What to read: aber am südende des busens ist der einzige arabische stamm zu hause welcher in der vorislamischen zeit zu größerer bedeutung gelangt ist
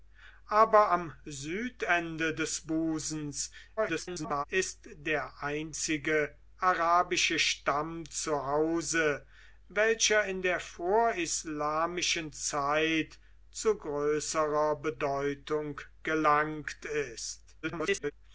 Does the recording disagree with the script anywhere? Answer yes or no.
yes